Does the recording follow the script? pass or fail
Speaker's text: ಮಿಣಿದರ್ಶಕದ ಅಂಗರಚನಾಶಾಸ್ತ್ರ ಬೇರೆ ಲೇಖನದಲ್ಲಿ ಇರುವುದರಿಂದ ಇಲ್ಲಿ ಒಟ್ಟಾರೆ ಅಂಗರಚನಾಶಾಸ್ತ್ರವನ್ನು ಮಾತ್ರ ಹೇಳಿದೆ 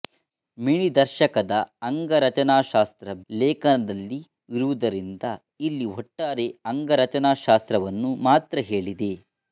fail